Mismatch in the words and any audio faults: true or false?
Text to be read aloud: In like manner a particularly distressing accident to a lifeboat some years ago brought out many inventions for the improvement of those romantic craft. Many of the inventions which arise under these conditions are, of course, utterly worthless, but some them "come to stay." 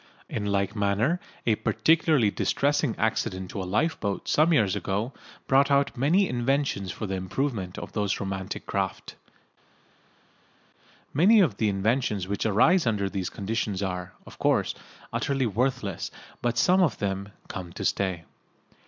true